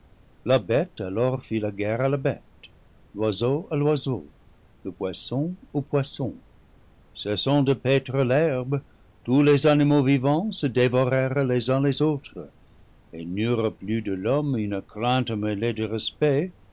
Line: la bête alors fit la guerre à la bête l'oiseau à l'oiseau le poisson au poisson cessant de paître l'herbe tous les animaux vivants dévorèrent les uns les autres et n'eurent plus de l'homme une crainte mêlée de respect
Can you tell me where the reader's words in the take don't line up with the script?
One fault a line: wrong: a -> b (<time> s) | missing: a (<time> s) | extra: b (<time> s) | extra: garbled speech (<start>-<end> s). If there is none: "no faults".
extra: se (10.5 s)